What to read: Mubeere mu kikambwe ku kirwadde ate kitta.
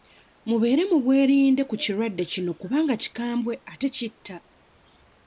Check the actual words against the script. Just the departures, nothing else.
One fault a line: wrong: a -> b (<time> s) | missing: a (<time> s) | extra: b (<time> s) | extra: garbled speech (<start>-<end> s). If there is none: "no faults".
wrong: kikambwe -> bwerinde (1.0 s)
extra: kino kubanga kikambwe (2.3 s)